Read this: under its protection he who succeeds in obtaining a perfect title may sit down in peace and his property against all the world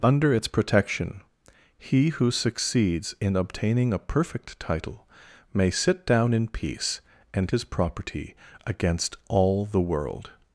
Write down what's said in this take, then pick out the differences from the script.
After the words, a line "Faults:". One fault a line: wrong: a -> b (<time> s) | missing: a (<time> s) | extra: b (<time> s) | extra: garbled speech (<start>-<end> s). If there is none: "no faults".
under its protection he who succeeds in obtaining a perfect title may sit down in peace and his property against all the world
Faults:
no faults